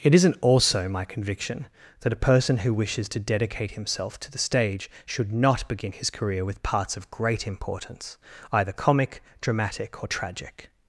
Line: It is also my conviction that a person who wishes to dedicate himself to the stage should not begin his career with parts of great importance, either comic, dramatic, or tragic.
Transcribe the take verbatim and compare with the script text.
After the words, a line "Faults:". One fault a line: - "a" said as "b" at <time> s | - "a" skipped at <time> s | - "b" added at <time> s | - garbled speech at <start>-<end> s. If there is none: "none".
It isn't also my conviction that a person who wishes to dedicate himself to the stage should not begin his career with parts of great importance, either comic, dramatic, or tragic.
Faults:
- "is" said as "isn't" at 0.1 s